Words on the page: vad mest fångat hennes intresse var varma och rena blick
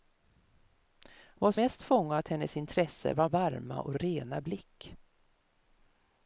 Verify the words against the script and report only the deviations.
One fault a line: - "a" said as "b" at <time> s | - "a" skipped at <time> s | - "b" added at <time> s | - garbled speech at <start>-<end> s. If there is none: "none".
none